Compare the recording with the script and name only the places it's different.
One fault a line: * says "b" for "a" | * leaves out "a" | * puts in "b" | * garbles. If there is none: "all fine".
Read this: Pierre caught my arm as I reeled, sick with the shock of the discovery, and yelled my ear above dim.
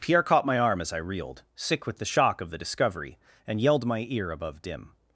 all fine